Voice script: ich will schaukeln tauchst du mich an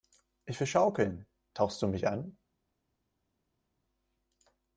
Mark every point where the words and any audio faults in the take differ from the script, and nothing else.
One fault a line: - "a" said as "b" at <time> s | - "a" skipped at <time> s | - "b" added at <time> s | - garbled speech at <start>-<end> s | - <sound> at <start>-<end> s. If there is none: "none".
none